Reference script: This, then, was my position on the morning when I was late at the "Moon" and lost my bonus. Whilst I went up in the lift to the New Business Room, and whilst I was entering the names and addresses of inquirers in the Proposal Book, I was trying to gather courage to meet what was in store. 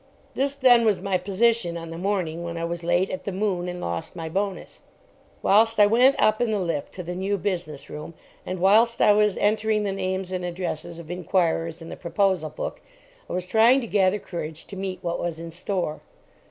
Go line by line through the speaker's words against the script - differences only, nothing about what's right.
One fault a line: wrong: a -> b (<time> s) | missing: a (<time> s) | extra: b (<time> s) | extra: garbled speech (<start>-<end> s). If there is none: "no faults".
no faults